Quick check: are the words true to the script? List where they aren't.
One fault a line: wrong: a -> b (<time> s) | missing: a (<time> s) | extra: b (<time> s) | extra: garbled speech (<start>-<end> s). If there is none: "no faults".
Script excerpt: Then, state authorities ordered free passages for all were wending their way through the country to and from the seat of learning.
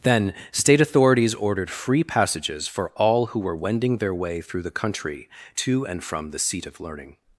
extra: who (3.3 s)